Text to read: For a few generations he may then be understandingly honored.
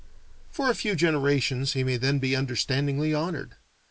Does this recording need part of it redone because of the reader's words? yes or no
no